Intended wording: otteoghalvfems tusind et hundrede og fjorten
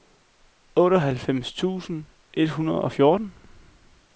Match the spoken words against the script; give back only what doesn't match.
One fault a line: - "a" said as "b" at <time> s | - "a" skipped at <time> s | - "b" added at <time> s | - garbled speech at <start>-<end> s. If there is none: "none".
none